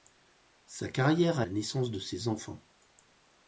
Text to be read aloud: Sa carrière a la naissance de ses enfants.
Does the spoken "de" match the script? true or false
true